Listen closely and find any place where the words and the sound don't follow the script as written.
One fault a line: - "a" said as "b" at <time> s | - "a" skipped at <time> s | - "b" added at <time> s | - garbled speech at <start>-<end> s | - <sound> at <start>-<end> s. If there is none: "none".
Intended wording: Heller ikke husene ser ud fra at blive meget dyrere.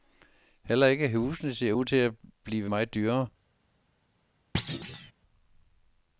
- "fra" said as "til" at 1.8 s
- thud at 4.5-5.1 s